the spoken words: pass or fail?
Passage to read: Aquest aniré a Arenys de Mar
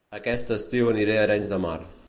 fail